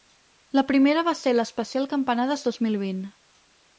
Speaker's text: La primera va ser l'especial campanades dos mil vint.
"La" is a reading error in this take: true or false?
false